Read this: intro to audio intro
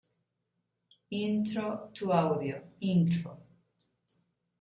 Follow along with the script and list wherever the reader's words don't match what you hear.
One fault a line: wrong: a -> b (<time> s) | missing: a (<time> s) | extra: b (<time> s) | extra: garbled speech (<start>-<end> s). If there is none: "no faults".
no faults